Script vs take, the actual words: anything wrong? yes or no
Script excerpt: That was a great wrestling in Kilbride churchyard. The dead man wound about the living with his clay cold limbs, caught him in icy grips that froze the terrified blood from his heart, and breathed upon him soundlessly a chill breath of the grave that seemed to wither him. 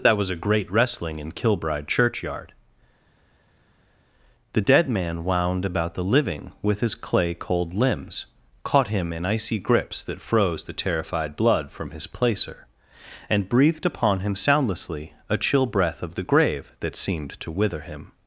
yes